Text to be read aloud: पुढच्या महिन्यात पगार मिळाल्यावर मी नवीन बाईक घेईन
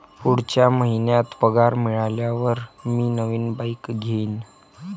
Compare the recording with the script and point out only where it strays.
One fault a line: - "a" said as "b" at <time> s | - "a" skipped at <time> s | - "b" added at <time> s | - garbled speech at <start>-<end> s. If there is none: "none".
none